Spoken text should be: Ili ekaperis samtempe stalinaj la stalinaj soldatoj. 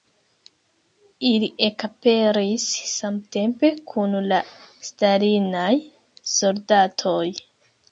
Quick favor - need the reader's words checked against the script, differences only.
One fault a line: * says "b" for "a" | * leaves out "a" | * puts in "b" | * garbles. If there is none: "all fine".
* says "kun" for "stalinaj"